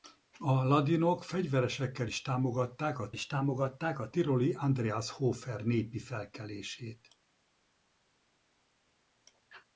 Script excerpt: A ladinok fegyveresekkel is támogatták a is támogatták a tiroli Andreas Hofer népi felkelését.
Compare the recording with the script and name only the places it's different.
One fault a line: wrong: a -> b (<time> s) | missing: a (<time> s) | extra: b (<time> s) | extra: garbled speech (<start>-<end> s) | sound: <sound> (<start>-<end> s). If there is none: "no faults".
no faults